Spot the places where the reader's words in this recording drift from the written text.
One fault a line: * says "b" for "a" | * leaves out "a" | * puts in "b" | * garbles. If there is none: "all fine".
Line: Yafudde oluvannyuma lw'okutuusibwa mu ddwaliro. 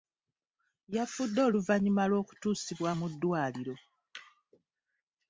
all fine